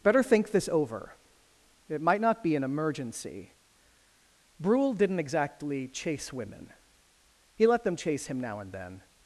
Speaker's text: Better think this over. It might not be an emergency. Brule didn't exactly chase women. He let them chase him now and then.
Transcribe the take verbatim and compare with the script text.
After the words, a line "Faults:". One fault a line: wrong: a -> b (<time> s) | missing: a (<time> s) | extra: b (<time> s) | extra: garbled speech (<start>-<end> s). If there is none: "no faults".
Better think this over. It might not be an emergency. Brule didn't exactly chase women. He let them chase him now and then.
Faults:
no faults